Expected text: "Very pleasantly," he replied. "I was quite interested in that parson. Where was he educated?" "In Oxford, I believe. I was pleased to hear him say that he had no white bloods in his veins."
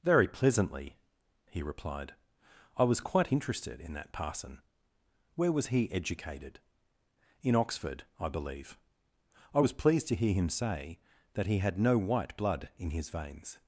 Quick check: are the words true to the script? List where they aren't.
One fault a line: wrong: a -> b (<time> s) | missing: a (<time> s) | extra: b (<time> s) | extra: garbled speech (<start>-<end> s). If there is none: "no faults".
wrong: bloods -> blood (12.4 s)